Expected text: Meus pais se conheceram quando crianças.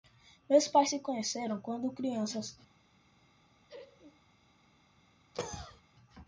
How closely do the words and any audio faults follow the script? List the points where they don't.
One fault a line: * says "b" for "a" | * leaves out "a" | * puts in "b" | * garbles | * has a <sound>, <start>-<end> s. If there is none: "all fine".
* has a laugh, 3.7-4.2 s
* has a cough, 5.3-5.8 s